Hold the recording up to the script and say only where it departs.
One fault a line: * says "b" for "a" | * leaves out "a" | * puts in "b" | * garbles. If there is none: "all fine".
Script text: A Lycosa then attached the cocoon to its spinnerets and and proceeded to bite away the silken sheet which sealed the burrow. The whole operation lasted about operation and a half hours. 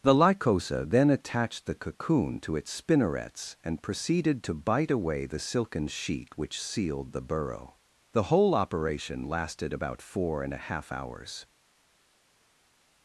* says "The" for "A"
* leaves out "and"
* says "four" for "operation"